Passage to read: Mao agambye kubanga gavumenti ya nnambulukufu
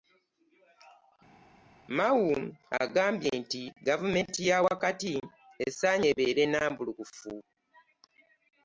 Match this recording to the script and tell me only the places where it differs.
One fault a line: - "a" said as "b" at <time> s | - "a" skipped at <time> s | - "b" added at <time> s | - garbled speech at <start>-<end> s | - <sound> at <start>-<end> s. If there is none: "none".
- "kubanga" said as "nti" at 3.4 s
- "wakati esaanye ebeere" added at 4.7 s